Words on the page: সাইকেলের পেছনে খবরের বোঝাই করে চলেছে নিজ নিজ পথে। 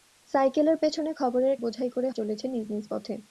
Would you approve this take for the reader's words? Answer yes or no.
yes